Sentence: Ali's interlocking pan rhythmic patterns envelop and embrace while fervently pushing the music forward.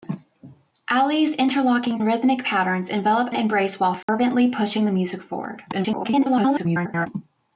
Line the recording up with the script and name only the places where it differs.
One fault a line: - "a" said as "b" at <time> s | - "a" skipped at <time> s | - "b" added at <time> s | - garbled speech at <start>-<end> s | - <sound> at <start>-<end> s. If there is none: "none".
- "pan" skipped at 2.0 s
- "and" skipped at 3.3 s
- dropout at 4.0-4.1 s
- garbled speech at 5.7-7.1 s